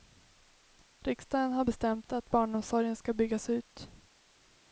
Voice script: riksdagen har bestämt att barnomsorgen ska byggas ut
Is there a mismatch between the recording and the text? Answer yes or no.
no